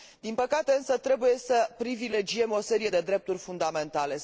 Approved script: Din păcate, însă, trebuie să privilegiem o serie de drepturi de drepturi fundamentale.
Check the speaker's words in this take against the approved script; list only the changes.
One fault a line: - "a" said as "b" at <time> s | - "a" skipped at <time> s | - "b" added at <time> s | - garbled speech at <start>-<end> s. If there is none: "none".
- "de drepturi" skipped at 3.4 s